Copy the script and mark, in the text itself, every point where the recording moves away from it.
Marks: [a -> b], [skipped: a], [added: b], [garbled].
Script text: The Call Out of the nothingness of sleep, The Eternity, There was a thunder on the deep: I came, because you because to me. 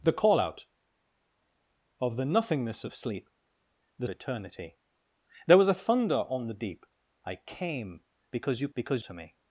The Call Out of the nothingness of sleep, The Eternity, There was a thunder on the deep: I came, because you because to me.